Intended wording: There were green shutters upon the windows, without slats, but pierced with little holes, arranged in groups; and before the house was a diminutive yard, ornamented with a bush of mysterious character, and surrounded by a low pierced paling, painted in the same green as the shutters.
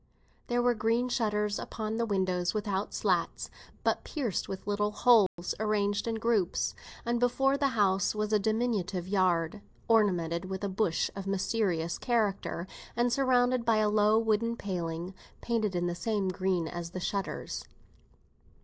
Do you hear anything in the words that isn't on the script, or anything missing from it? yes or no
yes